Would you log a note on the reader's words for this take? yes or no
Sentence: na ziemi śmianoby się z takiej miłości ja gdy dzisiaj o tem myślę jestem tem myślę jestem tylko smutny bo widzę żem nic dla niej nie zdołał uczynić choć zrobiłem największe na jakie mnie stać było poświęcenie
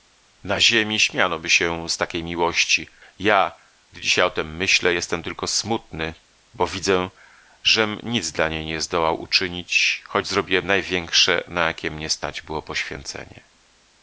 yes